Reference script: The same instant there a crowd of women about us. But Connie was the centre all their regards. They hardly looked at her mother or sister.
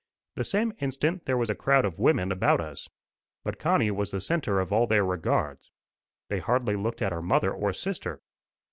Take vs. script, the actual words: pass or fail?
fail